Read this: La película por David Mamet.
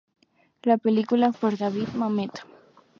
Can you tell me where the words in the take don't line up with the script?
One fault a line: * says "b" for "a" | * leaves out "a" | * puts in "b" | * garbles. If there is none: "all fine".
all fine